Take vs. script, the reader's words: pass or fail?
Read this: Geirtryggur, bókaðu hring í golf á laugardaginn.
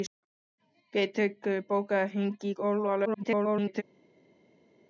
fail